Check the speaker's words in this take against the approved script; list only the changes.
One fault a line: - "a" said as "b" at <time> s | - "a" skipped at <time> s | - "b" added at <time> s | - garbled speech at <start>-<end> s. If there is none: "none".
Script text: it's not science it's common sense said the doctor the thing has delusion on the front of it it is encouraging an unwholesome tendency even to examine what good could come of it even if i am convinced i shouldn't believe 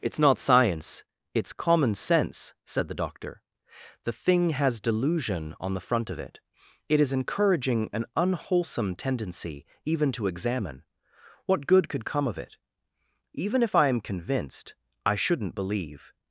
none